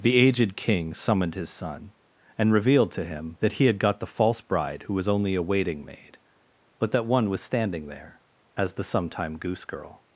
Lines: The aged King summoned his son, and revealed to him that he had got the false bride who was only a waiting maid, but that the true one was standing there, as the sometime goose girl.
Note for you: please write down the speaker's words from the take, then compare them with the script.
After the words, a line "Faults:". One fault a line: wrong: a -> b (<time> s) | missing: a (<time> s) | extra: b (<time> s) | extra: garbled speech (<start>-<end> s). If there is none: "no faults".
The aged King summoned his son, and revealed to him that he had got the false bride who was only a waiting maid, but that one was standing there, as the sometime goose girl.
Faults:
missing: the true (7.0 s)